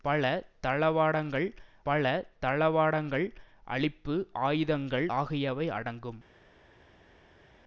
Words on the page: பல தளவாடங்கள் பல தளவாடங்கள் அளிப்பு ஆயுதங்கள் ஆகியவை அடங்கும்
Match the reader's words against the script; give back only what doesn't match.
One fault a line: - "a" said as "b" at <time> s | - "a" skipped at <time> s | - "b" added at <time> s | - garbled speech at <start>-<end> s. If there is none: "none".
none